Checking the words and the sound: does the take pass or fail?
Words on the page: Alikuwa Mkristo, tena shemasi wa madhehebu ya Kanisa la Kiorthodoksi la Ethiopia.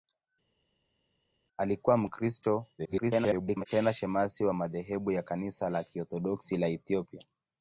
fail